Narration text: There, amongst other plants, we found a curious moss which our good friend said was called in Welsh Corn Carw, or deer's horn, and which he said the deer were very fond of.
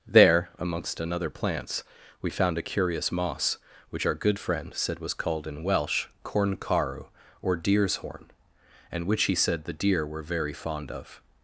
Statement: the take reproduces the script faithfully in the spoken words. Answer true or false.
false